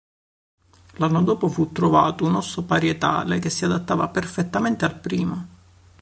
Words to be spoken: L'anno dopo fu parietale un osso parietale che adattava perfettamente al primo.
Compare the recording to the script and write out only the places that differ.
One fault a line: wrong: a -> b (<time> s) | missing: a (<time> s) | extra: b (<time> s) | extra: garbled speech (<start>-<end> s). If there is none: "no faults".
wrong: parietale -> trovato (1.7 s)
extra: si (3.5 s)